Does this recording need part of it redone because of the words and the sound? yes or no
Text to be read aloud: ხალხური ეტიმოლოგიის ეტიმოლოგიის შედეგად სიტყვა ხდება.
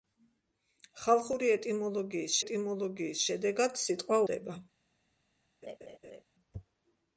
yes